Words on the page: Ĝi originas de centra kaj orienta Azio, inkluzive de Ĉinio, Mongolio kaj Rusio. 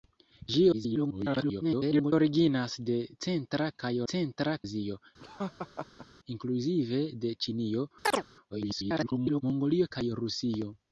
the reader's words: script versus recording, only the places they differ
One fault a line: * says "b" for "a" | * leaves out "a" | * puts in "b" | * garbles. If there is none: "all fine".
* garbles
* says "centra" for "orienta"
* garbles